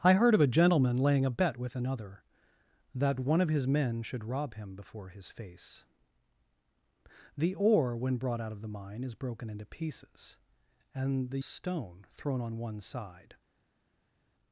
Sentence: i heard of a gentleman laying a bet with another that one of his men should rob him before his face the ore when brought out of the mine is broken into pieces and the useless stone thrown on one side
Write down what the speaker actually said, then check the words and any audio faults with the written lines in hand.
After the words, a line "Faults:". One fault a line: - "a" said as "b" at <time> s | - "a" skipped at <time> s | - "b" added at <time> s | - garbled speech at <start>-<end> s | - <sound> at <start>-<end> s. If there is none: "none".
i heard of a gentleman laying a bet with another that one of his men should rob him before his face the ore when brought out of the mine is broken into pieces and the stone thrown on one side
Faults:
- "useless" skipped at 11.4 s